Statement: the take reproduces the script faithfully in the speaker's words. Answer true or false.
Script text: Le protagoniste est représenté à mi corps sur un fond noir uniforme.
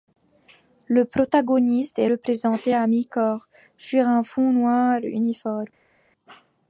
true